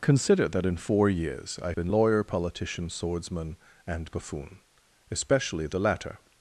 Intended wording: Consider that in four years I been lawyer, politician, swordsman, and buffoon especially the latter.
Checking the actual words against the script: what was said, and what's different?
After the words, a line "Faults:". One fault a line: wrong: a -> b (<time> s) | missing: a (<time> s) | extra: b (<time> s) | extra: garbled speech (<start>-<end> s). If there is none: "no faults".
Consider that in four years I been lawyer, politician, swordsman, and buffoon especially the latter.
Faults:
no faults